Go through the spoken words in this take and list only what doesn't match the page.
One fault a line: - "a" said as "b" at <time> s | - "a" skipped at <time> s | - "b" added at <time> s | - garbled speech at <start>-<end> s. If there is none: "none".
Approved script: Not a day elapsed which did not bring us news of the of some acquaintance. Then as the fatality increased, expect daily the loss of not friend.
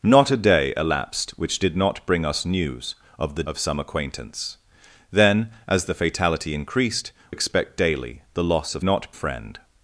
none